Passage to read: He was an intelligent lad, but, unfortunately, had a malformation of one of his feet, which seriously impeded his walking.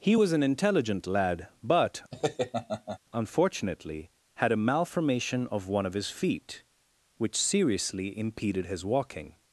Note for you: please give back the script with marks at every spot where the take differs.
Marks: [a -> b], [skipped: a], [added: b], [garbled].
He was an intelligent lad, but, unfortunately, had a malformation of one of his feet, which seriously impeded his walking.